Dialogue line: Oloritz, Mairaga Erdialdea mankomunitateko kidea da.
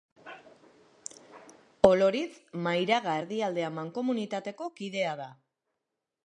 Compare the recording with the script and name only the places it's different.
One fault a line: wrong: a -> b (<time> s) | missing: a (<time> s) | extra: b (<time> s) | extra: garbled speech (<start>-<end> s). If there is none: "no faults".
no faults